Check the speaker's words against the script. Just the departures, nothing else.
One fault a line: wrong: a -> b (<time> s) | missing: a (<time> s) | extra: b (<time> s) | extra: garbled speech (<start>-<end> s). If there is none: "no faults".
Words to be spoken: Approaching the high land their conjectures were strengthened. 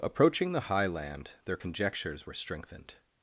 no faults